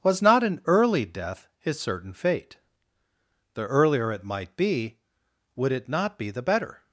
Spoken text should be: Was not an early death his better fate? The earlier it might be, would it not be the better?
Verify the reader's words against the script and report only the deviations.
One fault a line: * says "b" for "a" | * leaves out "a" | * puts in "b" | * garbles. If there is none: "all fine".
* says "certain" for "better"